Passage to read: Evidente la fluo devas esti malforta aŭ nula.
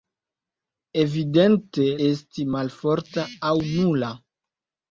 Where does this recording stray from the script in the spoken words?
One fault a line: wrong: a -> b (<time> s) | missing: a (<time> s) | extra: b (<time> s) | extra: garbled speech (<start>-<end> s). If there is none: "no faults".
missing: la fluo devas (1.9 s)